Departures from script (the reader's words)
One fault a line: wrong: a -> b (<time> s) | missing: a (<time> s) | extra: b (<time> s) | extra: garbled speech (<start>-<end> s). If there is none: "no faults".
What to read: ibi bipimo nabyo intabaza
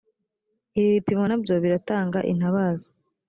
extra: biratanga (1.6 s)